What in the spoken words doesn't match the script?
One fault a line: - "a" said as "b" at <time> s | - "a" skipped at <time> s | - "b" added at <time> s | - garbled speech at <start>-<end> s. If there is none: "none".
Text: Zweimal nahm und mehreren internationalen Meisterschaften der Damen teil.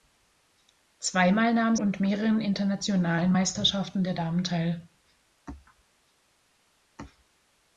none